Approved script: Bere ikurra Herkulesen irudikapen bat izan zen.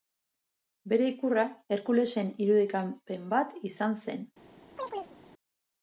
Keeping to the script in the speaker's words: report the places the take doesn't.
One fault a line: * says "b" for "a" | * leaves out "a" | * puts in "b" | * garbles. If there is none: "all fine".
all fine